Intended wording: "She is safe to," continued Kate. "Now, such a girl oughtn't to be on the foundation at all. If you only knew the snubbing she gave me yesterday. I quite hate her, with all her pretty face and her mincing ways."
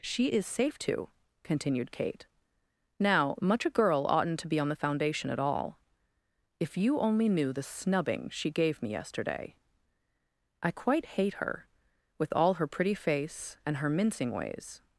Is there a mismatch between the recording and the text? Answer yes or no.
yes